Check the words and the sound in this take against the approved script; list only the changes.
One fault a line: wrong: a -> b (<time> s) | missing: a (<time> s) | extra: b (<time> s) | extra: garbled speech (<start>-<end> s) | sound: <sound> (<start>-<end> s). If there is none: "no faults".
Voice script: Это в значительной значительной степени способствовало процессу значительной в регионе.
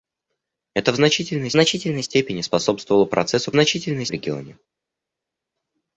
no faults